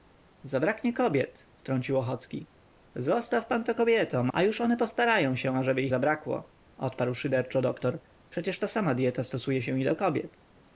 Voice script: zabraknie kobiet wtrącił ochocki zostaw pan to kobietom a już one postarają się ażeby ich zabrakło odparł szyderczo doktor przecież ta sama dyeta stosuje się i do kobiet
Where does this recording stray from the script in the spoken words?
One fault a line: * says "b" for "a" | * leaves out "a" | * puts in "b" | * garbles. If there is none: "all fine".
all fine